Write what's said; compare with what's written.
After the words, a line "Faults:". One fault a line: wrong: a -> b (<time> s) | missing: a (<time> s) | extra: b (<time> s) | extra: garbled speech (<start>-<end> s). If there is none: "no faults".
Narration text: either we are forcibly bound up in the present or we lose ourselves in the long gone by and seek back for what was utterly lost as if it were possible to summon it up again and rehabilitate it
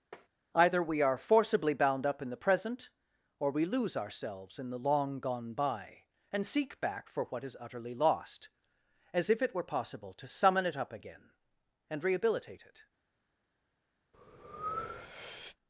either we are forcibly bound up in the present or we lose ourselves in the long gone by and seek back for what is utterly lost as if it were possible to summon it up again and rehabilitate it
Faults:
wrong: was -> is (7.4 s)